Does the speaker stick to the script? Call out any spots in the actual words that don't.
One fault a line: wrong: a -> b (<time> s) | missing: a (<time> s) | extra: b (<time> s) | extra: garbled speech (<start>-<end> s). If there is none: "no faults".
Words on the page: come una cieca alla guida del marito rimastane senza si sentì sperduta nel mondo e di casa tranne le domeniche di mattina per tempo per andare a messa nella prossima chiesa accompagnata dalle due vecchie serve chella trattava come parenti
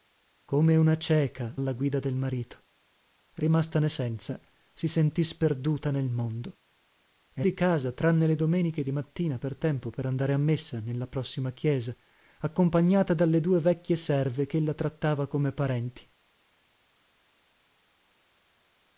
no faults